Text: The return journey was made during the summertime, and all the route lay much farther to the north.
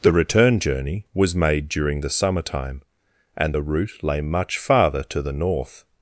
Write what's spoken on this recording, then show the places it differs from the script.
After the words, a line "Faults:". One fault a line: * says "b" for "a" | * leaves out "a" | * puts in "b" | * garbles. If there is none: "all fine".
The return journey was made during the summertime, and the route lay much farther to the north.
Faults:
* leaves out "all"